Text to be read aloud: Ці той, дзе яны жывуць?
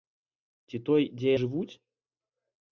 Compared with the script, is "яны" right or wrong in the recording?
wrong